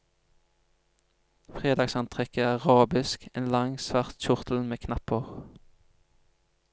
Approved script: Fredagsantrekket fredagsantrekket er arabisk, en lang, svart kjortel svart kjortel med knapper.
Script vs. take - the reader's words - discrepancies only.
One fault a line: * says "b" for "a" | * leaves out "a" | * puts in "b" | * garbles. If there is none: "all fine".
* leaves out "fredagsantrekket"
* leaves out "svart kjortel"